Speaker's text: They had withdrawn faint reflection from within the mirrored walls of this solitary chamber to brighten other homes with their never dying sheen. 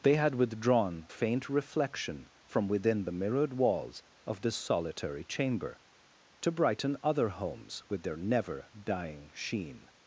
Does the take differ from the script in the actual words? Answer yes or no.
no